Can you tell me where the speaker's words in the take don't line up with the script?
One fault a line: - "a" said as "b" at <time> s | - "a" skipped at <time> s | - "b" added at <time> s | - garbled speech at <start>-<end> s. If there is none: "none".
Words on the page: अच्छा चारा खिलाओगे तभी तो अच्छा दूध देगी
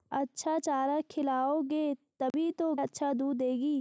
none